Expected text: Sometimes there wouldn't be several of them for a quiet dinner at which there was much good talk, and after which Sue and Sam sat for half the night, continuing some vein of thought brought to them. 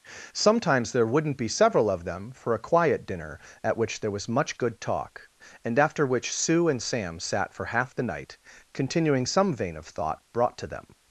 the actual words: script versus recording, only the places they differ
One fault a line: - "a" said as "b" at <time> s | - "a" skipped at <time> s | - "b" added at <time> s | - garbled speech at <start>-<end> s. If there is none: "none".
none